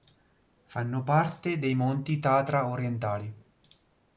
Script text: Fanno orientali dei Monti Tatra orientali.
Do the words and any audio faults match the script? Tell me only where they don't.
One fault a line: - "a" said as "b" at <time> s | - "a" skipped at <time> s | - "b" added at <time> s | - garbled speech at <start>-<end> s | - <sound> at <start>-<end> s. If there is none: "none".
- "orientali" said as "parte" at 1.0 s